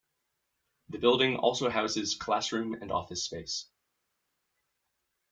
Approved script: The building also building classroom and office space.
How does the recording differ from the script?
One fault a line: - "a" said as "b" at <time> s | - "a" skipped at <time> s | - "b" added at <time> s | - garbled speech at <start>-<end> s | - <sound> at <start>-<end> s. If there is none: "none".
- "building" said as "houses" at 1.7 s